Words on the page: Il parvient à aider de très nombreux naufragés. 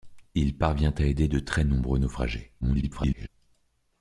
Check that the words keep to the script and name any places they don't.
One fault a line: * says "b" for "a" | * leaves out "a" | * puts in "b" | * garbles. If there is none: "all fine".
* garbles